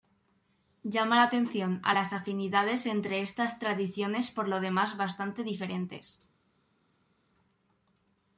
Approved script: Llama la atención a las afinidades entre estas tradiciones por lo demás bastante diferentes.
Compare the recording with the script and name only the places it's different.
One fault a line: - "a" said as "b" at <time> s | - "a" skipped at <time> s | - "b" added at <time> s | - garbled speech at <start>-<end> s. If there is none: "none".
none